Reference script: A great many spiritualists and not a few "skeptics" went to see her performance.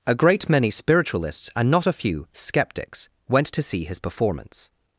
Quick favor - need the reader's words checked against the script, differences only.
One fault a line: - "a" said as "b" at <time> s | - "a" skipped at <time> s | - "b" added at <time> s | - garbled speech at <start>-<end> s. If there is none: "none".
- "her" said as "his" at 3.8 s